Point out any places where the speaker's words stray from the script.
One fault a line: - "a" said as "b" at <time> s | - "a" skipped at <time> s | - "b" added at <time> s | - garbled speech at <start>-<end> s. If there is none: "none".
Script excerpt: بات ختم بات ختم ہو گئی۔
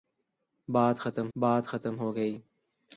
none